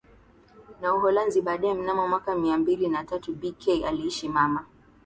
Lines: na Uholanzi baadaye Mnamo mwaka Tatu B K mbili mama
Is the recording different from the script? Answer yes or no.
yes